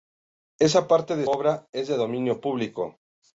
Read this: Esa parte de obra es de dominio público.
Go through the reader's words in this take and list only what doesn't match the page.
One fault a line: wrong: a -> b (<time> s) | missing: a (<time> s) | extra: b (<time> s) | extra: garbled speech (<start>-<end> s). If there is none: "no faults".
no faults